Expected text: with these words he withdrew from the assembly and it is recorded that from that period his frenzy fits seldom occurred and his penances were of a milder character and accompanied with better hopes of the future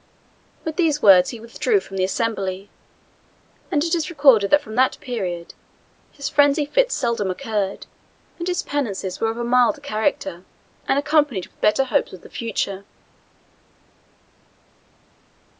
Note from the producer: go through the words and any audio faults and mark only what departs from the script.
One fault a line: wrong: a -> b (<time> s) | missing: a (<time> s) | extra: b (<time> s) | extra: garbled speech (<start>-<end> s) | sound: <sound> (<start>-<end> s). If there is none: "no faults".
no faults